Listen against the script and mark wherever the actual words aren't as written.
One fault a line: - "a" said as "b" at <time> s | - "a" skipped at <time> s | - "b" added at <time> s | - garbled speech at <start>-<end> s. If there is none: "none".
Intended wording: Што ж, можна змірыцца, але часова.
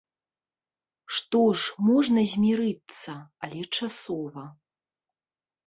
none